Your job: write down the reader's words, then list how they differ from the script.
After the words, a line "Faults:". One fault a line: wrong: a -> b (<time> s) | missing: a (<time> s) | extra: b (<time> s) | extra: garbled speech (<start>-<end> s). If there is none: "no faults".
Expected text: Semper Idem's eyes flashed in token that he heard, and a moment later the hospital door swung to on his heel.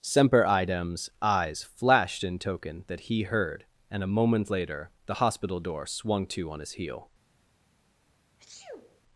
Semper Idem's eyes flashed in token that he heard, and a moment later the hospital door swung to on his heel.
Faults:
no faults